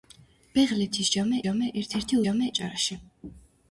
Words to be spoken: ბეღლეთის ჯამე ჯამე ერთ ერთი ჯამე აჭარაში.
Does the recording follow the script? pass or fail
pass